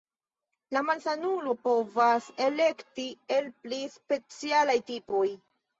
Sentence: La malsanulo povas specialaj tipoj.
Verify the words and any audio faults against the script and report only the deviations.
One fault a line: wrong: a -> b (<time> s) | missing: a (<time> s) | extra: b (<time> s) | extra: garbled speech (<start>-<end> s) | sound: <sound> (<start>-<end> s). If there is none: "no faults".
extra: elekti el pli (2.5 s)